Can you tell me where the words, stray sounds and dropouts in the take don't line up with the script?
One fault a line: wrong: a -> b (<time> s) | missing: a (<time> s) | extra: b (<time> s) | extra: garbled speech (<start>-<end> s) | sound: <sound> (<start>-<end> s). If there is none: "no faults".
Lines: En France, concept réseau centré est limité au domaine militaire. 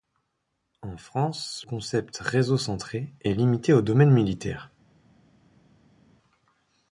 no faults